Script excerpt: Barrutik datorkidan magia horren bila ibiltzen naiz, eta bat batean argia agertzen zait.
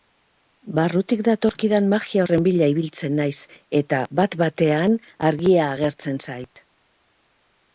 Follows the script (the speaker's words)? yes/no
yes